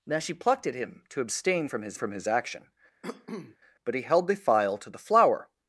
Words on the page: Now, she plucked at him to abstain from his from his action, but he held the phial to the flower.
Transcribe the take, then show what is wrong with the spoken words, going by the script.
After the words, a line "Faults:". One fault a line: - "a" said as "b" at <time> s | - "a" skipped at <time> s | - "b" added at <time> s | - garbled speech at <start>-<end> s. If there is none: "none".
Now, she plucked at him to abstain from his from his action, but he held the phial to the flower.
Faults:
none